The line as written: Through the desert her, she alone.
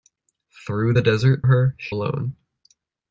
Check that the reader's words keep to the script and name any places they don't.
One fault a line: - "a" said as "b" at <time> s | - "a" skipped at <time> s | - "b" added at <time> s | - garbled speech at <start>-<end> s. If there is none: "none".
none